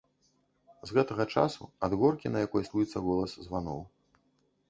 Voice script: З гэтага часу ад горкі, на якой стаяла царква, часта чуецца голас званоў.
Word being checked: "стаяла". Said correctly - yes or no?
no